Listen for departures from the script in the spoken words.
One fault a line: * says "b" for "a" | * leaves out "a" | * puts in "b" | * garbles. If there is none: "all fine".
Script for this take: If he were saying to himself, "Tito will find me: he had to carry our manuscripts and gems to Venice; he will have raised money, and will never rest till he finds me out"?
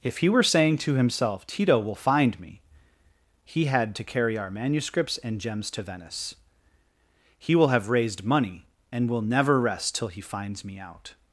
all fine